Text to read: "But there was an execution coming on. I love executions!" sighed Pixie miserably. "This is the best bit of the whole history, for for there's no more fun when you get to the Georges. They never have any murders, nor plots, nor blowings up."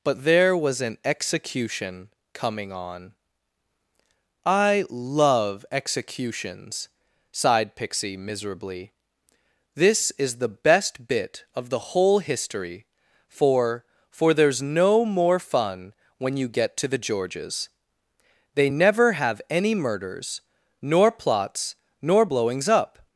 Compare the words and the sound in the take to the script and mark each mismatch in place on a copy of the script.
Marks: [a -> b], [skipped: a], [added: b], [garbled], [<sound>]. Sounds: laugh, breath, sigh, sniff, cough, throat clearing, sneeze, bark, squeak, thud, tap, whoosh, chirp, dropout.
"But there was an execution coming on. I love executions!" sighed Pixie miserably. "This is the best bit of the whole history, for for there's no more fun when you get to the Georges. They never have any murders, nor plots, nor blowings up."